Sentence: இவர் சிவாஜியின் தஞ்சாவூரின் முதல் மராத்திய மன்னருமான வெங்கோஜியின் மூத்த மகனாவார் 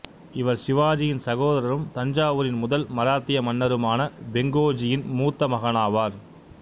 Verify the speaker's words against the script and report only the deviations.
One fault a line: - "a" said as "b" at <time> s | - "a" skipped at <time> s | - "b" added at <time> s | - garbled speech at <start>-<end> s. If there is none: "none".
- "சகோதரரும்" added at 1.2 s